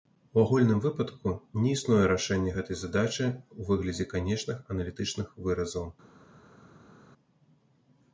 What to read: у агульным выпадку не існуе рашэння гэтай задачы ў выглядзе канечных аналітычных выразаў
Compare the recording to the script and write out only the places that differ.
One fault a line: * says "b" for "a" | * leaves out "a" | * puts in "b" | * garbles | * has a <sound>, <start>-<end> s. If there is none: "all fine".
all fine